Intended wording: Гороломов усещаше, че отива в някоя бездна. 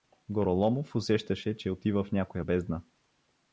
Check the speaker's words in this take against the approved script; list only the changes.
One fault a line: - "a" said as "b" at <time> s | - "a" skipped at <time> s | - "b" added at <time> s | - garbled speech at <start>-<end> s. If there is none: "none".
none